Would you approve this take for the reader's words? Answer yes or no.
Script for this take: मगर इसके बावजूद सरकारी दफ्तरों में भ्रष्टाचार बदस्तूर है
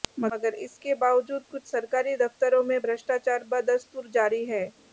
no